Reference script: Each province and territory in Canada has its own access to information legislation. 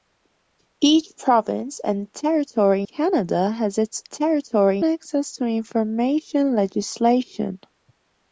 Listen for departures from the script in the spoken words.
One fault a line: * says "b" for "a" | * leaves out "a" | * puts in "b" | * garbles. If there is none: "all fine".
* leaves out "in"
* says "territory" for "own"